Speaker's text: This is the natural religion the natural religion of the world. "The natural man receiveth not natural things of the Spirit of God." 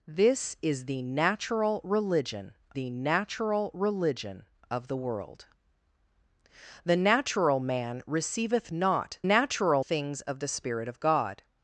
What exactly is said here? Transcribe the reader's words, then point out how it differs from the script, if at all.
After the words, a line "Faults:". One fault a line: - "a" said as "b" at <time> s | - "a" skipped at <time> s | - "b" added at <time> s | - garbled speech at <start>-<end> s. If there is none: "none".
This is the natural religion the natural religion of the world. "The natural man receiveth not natural things of the Spirit of God."
Faults:
none